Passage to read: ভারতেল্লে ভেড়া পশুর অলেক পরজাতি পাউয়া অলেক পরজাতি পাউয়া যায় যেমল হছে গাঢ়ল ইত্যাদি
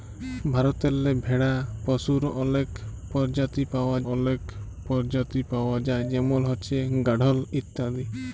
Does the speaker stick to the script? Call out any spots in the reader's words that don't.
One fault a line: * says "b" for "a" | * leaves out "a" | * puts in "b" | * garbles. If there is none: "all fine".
all fine